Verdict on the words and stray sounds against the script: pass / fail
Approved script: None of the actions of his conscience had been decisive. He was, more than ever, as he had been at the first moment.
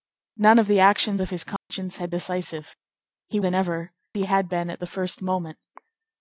fail